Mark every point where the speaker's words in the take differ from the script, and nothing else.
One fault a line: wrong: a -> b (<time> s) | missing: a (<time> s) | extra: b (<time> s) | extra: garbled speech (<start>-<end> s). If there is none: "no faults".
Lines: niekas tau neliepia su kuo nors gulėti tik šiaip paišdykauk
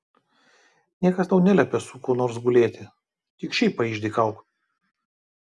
no faults